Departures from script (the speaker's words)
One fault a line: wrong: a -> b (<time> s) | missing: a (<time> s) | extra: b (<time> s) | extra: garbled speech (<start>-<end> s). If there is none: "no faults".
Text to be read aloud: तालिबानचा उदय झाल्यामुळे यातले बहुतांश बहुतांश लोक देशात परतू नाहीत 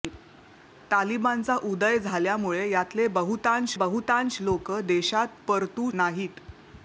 no faults